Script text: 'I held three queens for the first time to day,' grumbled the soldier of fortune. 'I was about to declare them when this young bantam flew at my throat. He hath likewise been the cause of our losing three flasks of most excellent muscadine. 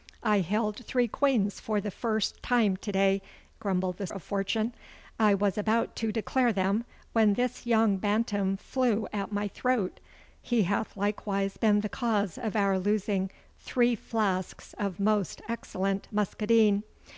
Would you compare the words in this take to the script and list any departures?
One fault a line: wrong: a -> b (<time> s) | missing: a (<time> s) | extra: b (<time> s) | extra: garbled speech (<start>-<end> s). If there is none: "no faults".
missing: soldier (4.1 s)